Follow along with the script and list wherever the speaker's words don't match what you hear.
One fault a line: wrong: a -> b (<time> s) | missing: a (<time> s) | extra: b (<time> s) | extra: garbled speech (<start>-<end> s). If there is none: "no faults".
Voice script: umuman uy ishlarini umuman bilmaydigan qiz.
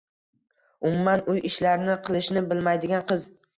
wrong: umuman -> qilishni (2.1 s)